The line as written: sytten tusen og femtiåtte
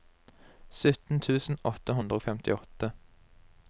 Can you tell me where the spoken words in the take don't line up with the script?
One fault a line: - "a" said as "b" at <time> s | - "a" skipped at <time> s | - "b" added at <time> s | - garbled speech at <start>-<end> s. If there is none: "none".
- "åtte hundre" added at 1.7 s